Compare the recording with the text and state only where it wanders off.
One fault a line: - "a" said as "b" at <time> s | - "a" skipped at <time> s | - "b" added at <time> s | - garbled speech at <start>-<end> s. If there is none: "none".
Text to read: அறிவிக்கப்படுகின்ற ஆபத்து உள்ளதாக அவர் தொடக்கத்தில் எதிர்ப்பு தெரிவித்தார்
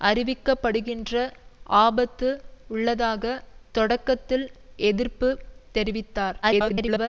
- "அவர்" skipped at 3.2 s
- garbled speech at 6.4-7.1 s